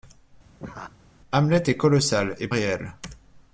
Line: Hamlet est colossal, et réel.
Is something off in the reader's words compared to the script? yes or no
no